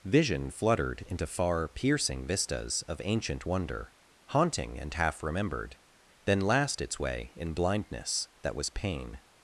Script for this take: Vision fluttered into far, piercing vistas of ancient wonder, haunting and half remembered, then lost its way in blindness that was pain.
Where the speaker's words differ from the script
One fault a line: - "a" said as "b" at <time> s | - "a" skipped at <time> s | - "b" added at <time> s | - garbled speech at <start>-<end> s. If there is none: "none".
- "lost" said as "last" at 6.4 s